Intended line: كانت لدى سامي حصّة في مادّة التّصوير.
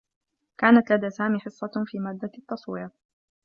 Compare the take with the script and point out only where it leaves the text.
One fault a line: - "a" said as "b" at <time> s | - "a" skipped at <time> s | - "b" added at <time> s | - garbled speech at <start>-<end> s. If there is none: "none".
none